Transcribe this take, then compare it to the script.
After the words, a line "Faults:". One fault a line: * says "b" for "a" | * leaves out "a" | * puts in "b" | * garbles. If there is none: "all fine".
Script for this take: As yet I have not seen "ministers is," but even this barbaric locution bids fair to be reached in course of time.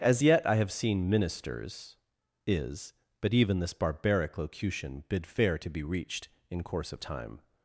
As yet I have seen "ministers is," but even this barbaric locution bid fair to be reached in course of time.
Faults:
* leaves out "not"
* says "bid" for "bids"